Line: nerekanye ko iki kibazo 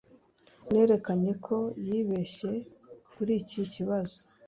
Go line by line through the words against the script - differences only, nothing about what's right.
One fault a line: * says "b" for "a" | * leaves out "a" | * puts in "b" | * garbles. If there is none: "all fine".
* puts in "yibeshye kuri"